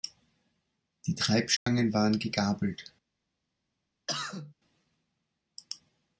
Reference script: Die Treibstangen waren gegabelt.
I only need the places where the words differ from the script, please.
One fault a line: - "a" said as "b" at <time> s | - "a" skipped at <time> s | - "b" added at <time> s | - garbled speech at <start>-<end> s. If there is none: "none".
none